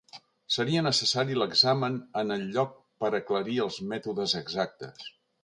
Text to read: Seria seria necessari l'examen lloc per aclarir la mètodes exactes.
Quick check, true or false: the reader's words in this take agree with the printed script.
false